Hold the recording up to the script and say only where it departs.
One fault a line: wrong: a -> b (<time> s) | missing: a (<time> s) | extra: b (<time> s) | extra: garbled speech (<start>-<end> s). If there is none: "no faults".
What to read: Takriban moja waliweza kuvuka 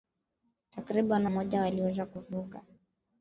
no faults